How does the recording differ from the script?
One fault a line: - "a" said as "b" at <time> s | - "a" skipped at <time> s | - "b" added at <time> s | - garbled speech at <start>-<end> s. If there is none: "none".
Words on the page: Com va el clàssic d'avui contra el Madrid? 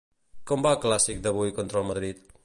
none